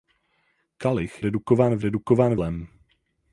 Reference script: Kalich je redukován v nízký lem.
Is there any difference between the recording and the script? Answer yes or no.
yes